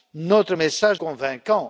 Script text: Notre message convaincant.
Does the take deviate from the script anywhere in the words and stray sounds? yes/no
no